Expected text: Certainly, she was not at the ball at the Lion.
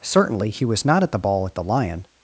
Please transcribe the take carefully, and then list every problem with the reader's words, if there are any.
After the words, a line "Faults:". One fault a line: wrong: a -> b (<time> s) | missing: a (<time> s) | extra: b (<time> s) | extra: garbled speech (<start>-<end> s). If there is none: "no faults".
Certainly, he was not at the ball at the Lion.
Faults:
wrong: she -> he (0.5 s)